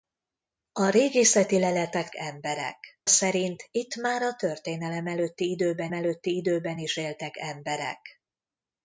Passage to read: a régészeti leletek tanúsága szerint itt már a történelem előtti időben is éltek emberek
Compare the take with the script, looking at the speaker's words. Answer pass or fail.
fail